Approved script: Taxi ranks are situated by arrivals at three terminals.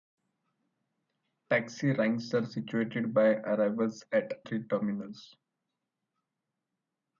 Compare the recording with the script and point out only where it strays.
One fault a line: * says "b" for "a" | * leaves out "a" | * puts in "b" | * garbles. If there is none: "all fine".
all fine